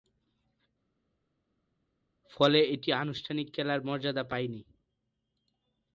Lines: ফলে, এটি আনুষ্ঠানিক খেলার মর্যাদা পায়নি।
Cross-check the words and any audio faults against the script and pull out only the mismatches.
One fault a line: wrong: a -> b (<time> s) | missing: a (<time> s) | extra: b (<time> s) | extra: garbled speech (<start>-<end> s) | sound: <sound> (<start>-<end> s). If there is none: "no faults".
no faults